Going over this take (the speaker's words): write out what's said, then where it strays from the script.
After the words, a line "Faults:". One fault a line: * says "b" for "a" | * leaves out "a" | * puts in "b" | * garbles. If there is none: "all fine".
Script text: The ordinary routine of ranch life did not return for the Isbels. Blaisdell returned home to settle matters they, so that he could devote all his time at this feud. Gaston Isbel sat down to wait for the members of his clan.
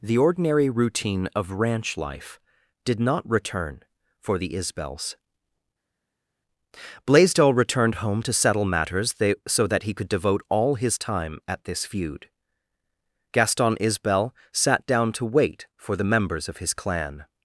The ordinary routine of ranch life did not return for the Isbels. Blaisdell returned home to settle matters they, so that he could devote all his time at this feud. Gaston Isbel sat down to wait for the members of his clan.
Faults:
all fine